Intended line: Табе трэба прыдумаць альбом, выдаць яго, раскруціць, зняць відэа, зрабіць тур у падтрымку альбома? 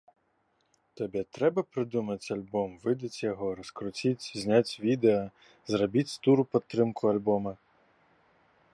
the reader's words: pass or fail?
pass